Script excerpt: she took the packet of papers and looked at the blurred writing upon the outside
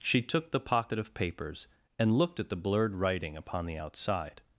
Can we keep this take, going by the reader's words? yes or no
no